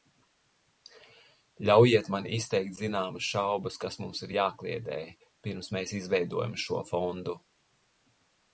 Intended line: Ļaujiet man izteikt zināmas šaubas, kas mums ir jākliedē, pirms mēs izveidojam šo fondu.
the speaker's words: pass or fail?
pass